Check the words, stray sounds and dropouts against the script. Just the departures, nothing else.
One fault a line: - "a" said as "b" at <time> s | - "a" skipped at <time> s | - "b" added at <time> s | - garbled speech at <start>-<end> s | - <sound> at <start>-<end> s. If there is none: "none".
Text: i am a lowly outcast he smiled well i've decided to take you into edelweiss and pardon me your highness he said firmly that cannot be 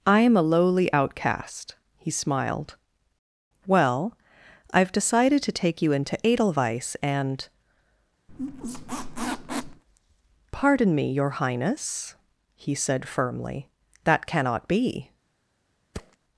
- squeak at 8.3-9.8 s
- thud at 15.9-16.2 s